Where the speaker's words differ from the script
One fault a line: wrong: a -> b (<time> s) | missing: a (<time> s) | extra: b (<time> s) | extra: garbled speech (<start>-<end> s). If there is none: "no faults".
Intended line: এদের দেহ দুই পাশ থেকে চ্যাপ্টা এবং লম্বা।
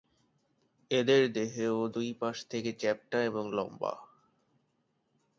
no faults